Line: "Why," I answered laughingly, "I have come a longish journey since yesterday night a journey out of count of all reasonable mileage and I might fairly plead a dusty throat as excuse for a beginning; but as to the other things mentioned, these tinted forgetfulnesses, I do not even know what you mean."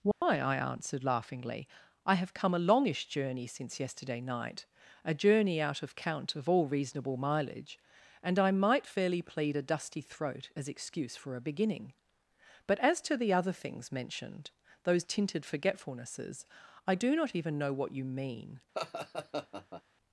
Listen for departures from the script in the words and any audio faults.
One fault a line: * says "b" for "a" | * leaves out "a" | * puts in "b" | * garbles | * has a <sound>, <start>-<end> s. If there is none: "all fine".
* has a dropout, 0.1-0.2 s
* says "those" for "these"
* has a laugh, 18.7-19.8 s